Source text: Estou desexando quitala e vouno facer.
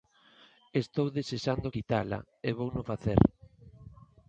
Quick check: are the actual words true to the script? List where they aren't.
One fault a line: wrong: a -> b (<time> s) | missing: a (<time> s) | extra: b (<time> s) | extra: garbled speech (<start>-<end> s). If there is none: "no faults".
no faults